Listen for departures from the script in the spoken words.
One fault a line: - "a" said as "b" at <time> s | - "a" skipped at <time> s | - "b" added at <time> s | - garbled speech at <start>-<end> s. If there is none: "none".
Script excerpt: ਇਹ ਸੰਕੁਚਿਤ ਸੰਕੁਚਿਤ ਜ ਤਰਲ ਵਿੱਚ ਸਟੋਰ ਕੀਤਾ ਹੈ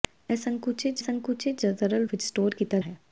none